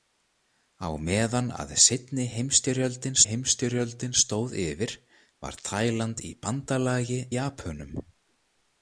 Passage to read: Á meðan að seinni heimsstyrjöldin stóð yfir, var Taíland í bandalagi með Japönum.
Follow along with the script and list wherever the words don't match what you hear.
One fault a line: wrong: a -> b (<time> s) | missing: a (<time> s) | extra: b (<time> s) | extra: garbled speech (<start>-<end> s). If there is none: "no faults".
extra: heimsstyrjöldin (3.2 s)
missing: með (7.2 s)